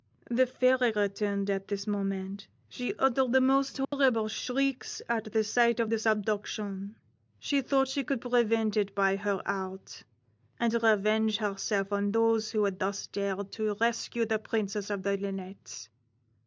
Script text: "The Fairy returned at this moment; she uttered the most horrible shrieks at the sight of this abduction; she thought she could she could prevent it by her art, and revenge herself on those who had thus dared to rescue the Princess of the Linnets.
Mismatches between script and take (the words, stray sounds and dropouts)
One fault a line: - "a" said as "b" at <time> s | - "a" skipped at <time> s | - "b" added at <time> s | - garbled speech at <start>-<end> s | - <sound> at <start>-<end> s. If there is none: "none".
- dropout at 3.8-3.9 s
- "she could" skipped at 8.2 s